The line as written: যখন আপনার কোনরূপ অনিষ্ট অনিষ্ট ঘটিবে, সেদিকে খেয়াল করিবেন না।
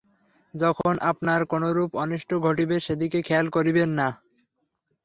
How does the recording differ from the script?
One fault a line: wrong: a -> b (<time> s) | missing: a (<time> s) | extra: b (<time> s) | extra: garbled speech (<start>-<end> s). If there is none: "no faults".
missing: অনিষ্ট (2.3 s)